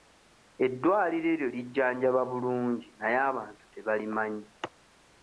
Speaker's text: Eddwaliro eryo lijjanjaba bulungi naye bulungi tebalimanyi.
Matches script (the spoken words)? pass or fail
fail